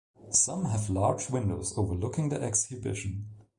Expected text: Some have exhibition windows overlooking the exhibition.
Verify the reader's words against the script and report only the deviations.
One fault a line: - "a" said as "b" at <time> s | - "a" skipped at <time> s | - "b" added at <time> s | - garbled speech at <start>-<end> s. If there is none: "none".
- "exhibition" said as "large" at 0.9 s